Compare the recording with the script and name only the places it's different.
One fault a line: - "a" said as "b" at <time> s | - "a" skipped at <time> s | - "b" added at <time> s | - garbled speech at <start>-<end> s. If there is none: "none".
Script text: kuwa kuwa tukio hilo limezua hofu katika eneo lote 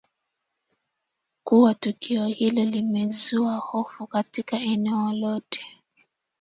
- "kuwa" skipped at 1.7 s